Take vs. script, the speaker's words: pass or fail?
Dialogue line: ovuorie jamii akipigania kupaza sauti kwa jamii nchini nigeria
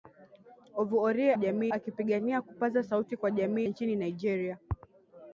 pass